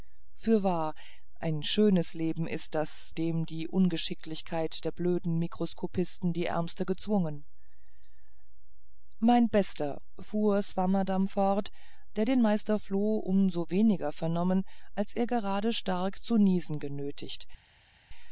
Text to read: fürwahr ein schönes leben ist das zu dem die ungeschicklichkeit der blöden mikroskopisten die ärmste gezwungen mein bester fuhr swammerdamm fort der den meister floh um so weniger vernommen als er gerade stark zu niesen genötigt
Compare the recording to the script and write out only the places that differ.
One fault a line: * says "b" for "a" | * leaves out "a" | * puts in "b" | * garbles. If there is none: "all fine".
* leaves out "zu"